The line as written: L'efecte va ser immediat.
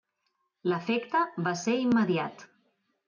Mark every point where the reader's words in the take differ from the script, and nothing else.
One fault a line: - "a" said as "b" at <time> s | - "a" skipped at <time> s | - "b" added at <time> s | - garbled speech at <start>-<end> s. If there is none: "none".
none